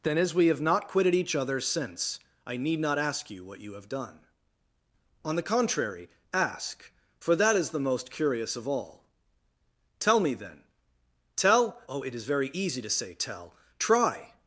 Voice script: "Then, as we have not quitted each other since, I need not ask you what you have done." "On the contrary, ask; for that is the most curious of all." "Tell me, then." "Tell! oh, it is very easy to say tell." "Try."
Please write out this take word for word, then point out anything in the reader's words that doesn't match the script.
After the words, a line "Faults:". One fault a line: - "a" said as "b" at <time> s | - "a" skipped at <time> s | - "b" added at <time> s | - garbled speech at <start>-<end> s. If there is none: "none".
"Then, as we have not quitted each other since, I need not ask you what you have done." "On the contrary, ask; for that is the most curious of all." "Tell me, then." "Tell! oh, it is very easy to say tell." "Try."
Faults:
none